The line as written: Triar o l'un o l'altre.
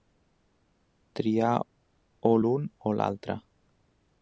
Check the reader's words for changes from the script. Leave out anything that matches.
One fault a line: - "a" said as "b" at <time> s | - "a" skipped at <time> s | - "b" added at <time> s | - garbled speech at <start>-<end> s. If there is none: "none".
none